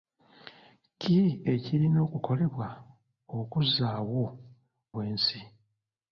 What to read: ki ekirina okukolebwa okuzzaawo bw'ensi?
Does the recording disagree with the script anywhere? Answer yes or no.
no